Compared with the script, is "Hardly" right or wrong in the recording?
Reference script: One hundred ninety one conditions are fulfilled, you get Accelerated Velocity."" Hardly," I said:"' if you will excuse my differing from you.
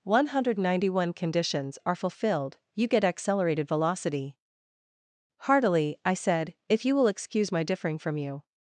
wrong